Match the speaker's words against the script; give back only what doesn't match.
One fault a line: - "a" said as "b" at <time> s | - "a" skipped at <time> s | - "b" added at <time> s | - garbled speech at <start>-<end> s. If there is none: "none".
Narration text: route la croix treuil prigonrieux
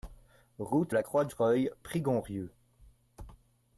none